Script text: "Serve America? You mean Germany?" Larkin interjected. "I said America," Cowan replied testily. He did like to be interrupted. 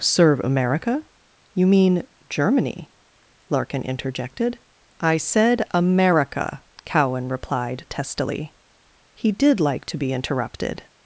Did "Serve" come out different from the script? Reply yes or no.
no